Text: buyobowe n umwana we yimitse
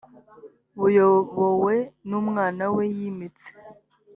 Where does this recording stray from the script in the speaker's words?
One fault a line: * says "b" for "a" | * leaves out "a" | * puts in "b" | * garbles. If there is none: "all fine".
all fine